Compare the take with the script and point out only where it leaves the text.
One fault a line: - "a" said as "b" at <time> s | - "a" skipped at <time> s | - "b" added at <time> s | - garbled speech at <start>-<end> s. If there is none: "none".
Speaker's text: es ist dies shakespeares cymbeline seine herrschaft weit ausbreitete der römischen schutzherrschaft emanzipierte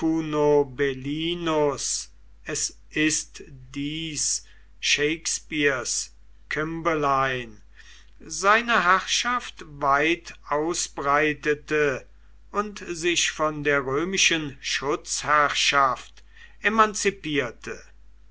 - "und sich von" added at 12.5 s